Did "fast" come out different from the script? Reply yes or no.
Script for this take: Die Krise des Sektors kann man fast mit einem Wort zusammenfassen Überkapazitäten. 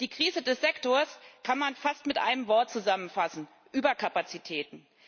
no